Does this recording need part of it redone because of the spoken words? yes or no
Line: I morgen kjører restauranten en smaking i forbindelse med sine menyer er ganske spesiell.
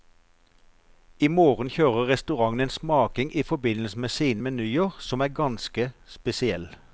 yes